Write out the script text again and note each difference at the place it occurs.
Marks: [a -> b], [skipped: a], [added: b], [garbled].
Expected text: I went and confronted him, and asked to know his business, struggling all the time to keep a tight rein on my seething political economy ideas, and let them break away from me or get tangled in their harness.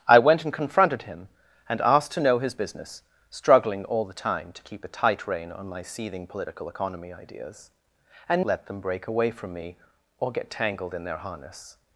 I went and confronted him, and asked to know his business, struggling all the time to keep a tight rein on my seething political economy ideas, and let them break away from me or get tangled in their harness.